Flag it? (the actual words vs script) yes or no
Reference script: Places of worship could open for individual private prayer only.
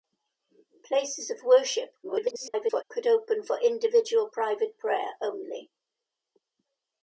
yes